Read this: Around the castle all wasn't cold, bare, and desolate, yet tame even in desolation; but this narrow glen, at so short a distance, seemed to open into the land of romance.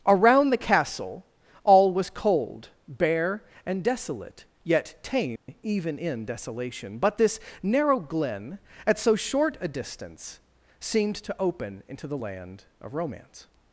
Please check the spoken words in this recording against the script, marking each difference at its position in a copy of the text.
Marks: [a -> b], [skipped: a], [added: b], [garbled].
Around the castle all [wasn't -> was] cold, bare, and desolate, yet tame even in desolation; but this narrow glen, at so short a distance, seemed to open into the land of romance.